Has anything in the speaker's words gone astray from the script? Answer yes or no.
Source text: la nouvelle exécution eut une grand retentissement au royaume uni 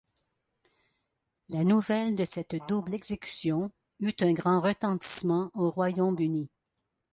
yes